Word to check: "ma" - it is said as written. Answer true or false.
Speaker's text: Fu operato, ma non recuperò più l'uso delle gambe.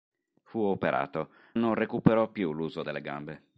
false